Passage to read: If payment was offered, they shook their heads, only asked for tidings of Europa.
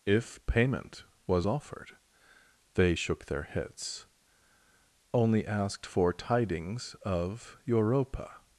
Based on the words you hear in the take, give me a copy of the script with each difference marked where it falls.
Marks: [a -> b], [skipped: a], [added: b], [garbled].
If payment was offered, they shook their heads, only asked for tidings of Europa.